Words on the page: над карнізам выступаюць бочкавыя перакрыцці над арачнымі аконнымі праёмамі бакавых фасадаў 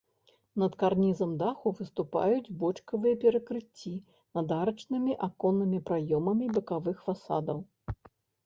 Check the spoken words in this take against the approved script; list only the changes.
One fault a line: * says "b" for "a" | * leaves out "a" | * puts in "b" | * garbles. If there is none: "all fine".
* puts in "даху"